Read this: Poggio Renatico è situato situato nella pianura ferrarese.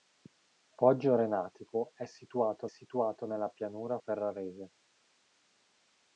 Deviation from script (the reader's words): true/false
false